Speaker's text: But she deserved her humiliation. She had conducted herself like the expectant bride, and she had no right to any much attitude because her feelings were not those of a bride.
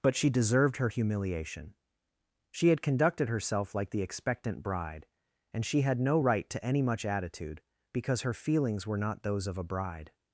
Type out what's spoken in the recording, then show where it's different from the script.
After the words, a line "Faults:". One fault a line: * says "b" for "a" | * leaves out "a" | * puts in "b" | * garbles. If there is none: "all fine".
But she deserved her humiliation. She had conducted herself like the expectant bride, and she had no right to any much attitude because her feelings were not those of a bride.
Faults:
all fine